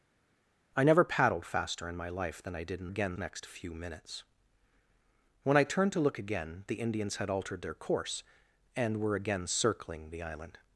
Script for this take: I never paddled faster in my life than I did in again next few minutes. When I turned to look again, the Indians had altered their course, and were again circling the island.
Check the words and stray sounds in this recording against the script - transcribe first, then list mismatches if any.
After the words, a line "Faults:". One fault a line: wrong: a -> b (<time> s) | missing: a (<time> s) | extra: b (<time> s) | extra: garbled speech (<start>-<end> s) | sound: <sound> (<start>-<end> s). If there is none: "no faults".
I never paddled faster in my life than I did in again next few minutes. When I turned to look again, the Indians had altered their course, and were again circling the island.
Faults:
no faults